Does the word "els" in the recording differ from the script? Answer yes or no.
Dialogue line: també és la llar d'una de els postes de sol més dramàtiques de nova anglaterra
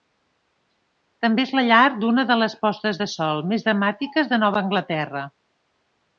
yes